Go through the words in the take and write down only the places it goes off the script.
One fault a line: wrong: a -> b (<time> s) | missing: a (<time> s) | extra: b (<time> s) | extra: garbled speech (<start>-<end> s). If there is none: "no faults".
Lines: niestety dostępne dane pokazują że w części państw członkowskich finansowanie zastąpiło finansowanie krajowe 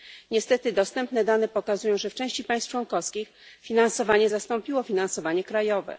no faults